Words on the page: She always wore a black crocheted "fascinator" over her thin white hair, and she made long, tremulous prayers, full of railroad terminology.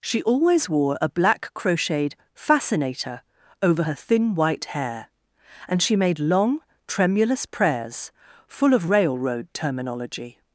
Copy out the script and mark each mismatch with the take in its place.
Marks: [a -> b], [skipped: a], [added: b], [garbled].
She always wore a black crocheted "fascinator" over her thin white hair, and she made long, tremulous prayers, full of railroad terminology.